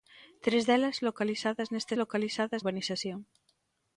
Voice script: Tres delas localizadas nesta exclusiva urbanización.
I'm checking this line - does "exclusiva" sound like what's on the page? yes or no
no